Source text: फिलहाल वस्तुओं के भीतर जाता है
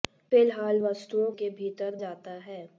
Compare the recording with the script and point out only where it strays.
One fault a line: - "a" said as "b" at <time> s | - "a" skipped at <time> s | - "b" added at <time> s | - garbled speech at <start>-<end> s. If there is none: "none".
none